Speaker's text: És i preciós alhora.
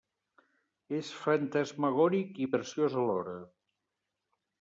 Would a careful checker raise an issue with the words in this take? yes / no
yes